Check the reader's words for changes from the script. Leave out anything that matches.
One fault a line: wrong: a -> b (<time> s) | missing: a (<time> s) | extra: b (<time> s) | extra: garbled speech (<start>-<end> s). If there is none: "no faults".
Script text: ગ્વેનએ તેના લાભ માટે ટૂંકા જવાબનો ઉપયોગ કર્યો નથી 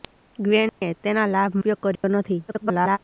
missing: માટે ટૂંકા જવાબનો (1.6 s)
extra: garbled speech (2.5-3.0 s)